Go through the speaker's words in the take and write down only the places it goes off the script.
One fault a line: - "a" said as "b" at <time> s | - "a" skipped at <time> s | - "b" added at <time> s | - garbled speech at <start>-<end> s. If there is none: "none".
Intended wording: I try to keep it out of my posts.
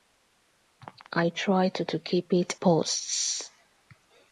- "to" added at 1.8 s
- "out of my" skipped at 2.5 s